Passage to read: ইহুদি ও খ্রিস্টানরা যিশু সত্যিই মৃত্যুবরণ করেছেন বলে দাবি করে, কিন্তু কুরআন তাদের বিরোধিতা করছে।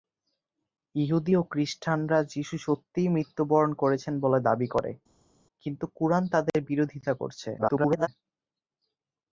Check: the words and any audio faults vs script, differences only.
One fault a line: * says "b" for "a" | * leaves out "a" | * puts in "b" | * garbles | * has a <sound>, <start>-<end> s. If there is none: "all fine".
* garbles